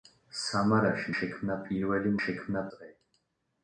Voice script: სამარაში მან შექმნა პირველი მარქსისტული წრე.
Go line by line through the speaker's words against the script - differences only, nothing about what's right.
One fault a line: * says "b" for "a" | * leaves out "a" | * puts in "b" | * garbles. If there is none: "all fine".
* leaves out "მან"
* says "შექმნა" for "მარქსისტული"